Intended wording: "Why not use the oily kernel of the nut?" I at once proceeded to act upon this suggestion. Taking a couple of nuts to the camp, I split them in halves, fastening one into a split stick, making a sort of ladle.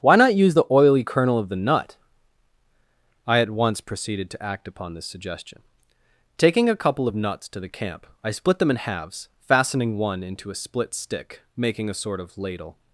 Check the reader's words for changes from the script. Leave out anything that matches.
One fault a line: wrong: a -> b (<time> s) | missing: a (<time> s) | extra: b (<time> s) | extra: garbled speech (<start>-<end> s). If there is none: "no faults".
no faults